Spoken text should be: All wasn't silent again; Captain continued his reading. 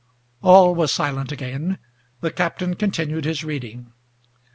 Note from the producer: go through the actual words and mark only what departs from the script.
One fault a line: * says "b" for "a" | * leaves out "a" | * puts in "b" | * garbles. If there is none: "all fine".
* says "was" for "wasn't"
* puts in "the"